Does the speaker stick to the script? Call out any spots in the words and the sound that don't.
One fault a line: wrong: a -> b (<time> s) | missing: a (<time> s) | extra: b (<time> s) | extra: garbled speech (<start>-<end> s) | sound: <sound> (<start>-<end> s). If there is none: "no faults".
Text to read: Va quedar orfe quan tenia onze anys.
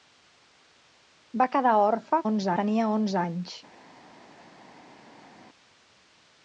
wrong: quan -> onze (2.3 s)